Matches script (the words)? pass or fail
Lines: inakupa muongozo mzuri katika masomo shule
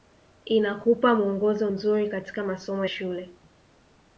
pass